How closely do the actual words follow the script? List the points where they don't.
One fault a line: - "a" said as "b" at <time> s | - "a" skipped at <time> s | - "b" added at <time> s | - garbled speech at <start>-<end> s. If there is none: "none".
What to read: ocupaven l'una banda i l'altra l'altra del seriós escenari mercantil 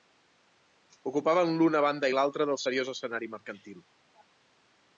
- "l'altra" skipped at 2.5 s